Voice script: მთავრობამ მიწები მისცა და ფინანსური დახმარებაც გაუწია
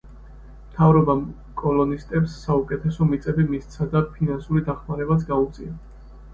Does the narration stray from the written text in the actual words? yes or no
yes